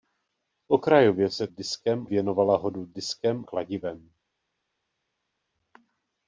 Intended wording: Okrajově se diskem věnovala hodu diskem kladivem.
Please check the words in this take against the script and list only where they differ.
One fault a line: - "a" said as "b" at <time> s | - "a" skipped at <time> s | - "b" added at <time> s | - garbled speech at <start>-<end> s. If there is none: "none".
none